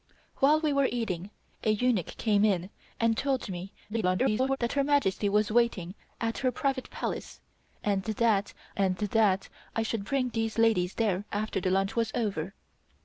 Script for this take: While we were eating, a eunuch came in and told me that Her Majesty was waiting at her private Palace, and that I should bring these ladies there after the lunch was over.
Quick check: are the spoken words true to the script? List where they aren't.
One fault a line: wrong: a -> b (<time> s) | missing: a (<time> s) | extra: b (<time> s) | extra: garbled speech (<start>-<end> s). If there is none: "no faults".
extra: garbled speech (3.9-4.6 s)
extra: and that (8.8 s)